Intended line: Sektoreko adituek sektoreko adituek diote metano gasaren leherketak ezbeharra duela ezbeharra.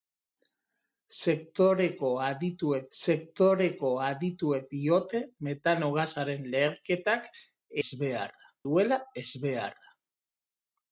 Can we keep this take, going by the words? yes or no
yes